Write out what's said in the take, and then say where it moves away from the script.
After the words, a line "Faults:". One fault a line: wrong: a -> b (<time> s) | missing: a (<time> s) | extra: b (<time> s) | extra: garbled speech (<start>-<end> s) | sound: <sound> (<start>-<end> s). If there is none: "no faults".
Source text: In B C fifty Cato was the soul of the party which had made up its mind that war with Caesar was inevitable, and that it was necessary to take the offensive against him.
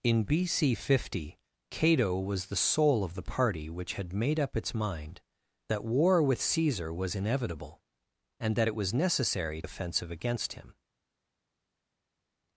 In B C fifty Cato was the soul of the party which had made up its mind that war with Caesar was inevitable, and that it was necessary offensive against him.
Faults:
missing: to take the (9.6 s)